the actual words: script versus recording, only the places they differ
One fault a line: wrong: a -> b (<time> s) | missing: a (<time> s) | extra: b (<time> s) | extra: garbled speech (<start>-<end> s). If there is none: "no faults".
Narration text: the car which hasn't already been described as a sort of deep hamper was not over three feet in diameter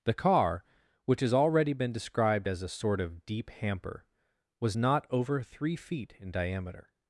wrong: hasn't -> has (1.2 s)